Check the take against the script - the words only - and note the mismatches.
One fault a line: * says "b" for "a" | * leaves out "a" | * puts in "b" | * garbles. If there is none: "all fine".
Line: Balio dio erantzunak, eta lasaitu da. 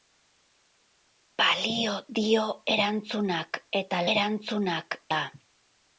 * says "erantzunak" for "lasaitu"